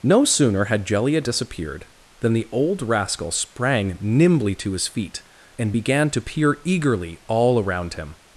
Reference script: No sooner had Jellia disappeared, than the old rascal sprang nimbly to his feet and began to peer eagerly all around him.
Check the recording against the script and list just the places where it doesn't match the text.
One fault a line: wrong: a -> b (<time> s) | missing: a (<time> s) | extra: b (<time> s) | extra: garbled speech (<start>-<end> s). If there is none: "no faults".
no faults